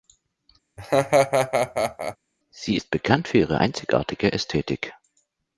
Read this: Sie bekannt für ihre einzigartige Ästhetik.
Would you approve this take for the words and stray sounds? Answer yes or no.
no